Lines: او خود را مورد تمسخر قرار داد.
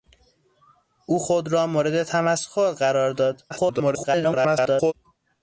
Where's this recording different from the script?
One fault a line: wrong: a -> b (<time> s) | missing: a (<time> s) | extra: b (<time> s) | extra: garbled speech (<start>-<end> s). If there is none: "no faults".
extra: garbled speech (3.5-4.9 s)